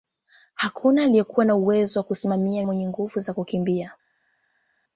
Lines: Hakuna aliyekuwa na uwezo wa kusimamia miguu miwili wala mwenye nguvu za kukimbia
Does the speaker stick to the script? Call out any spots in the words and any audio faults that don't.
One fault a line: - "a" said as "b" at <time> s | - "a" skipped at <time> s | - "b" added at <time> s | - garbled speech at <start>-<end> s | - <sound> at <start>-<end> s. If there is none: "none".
- "miguu miwili wala" skipped at 2.6 s